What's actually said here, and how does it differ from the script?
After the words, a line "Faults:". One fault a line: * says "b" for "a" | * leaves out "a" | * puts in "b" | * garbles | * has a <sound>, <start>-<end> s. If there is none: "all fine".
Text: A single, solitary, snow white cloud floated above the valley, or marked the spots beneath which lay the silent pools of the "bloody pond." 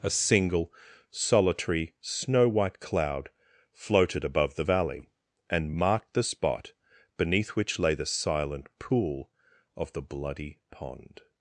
A single, solitary, snow white cloud floated above the valley, and marked the spot beneath which lay the silent pool of the "bloody pond."
Faults:
* says "and" for "or"
* says "spot" for "spots"
* says "pool" for "pools"